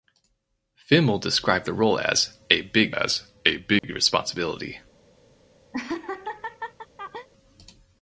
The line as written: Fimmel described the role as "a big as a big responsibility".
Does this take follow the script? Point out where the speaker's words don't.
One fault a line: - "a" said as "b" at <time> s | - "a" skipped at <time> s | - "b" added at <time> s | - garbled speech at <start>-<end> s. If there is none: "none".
none